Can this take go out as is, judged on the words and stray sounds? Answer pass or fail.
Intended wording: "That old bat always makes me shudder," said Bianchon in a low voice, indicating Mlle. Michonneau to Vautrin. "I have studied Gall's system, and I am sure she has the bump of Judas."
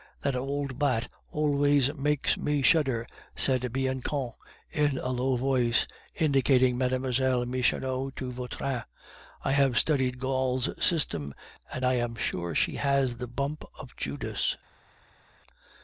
pass